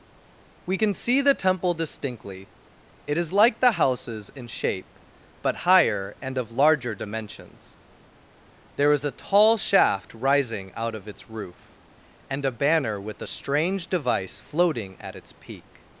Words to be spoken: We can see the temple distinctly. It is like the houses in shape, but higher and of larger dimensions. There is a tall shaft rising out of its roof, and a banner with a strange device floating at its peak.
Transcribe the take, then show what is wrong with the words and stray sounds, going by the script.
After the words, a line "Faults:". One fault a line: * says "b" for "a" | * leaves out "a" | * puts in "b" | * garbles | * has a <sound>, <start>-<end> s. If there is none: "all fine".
We can see the temple distinctly. It is like the houses in shape, but higher and of larger dimensions. There is a tall shaft rising out of its roof, and a banner with a strange device floating at its peak.
Faults:
all fine